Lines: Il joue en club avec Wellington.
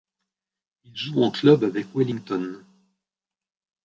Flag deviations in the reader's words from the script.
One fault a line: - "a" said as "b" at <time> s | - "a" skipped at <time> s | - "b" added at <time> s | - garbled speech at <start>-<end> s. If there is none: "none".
none